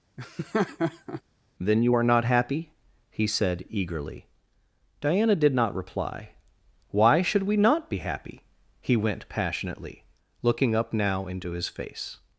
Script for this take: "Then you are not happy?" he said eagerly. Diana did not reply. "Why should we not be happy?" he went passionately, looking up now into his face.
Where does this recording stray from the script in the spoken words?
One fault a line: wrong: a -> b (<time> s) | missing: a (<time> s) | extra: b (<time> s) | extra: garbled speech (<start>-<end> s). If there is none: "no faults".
no faults